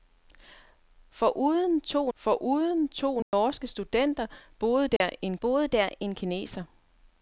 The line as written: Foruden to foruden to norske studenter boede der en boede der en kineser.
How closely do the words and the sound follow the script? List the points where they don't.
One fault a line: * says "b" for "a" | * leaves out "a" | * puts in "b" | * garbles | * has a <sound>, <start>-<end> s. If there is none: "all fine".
* has a dropout, 3.2-3.3 s
* has a dropout, 5.0-5.0 s